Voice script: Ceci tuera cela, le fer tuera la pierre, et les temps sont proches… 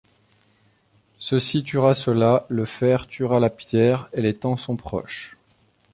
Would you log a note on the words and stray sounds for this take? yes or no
no